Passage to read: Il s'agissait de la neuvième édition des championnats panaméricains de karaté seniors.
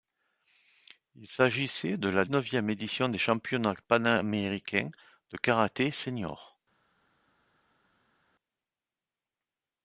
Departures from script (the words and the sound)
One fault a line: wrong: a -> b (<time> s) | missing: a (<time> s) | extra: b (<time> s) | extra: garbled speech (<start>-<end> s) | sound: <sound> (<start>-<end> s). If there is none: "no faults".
no faults